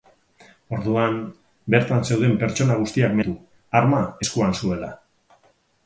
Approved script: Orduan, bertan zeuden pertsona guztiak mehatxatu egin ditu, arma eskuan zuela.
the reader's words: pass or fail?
fail